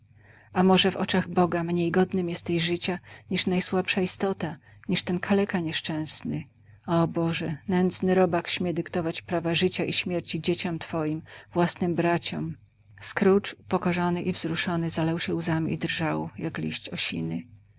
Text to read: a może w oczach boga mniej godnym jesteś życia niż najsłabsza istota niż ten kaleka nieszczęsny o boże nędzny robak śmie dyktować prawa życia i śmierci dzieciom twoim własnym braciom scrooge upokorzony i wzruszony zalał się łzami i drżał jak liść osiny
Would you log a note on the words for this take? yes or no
no